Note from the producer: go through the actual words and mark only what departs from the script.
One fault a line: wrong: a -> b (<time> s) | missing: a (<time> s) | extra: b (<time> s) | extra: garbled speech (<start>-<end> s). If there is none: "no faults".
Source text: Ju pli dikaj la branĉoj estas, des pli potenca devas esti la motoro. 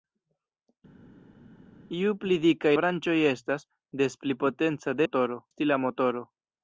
missing: la (2.7 s)
wrong: devas -> motoro (5.0 s)